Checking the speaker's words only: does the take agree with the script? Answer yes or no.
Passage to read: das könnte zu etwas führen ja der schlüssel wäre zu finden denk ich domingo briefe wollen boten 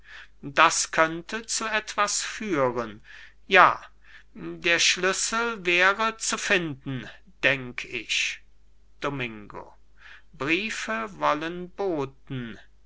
yes